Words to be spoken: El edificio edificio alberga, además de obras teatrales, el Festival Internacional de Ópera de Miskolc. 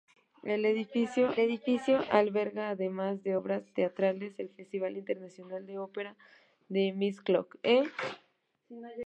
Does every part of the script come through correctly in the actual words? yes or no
yes